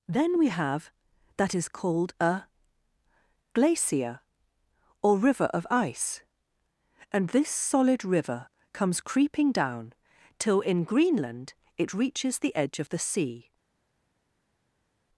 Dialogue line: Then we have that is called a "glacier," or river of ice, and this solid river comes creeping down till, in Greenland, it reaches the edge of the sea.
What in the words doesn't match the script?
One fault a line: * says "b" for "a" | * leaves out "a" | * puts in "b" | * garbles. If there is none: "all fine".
all fine